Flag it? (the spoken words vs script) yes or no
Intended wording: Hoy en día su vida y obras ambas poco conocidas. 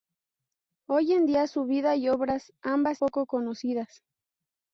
no